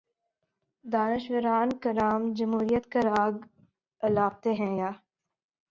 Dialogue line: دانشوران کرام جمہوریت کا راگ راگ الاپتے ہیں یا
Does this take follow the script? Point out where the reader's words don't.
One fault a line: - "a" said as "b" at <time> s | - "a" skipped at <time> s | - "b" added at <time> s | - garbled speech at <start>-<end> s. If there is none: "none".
- "راگ" skipped at 3.3 s